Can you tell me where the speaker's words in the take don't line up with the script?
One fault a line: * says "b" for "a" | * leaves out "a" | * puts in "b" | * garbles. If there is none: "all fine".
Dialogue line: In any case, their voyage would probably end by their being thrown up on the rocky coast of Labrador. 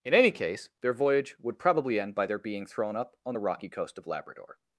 all fine